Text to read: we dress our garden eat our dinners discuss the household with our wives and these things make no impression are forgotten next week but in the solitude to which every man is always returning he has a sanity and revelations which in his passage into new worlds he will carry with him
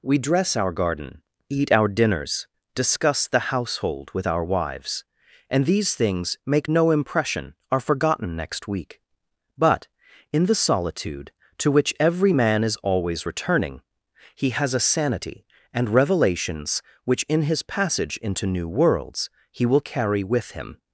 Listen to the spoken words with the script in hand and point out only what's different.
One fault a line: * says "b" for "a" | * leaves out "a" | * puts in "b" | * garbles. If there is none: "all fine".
all fine